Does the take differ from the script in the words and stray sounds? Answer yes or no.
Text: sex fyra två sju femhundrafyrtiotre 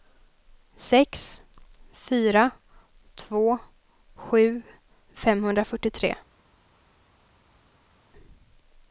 no